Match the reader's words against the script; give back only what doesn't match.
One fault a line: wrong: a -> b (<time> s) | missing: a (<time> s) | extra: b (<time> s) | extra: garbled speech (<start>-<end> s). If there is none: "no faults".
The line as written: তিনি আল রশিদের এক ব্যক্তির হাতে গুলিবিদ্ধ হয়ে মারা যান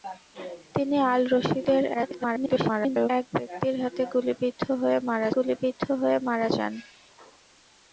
extra: garbled speech (1.9-3.1 s)
extra: গুলিবিদ্ধ হয়ে মারা (5.4 s)